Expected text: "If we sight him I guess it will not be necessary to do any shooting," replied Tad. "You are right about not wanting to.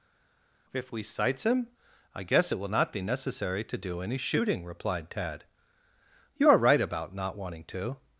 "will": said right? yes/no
yes